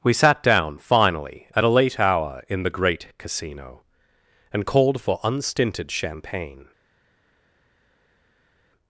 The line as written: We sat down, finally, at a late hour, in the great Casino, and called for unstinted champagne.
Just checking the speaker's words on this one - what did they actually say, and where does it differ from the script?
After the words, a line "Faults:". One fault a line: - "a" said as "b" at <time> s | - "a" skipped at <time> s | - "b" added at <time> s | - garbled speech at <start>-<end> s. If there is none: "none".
We sat down, finally, at a late hour, in the great Casino, and called for unstinted champagne.
Faults:
none